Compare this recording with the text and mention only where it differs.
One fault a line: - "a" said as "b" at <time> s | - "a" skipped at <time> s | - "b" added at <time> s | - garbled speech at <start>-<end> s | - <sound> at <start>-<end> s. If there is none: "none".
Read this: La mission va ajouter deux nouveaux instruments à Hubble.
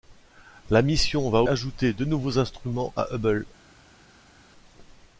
none